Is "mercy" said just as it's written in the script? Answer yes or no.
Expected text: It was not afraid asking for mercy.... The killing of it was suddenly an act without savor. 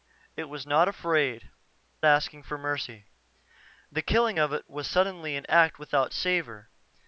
yes